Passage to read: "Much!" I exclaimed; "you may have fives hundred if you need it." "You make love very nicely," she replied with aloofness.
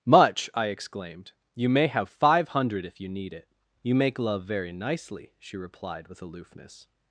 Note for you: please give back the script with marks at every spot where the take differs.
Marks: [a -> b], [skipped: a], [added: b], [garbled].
"Much!" I exclaimed; "you may have [fives -> five] hundred if you need it." "You make love very nicely," she replied with aloofness.